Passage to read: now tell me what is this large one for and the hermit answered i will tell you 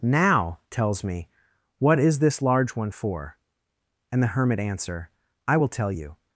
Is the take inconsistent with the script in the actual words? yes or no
yes